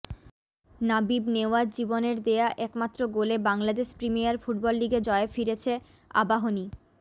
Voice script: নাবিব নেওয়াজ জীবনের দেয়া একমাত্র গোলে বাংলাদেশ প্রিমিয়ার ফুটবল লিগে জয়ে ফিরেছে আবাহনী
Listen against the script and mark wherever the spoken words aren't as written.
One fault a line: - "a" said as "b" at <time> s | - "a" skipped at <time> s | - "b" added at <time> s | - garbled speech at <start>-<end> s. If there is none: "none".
none